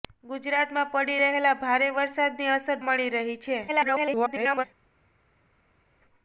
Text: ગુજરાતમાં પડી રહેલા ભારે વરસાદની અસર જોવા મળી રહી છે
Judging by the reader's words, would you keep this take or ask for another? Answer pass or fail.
fail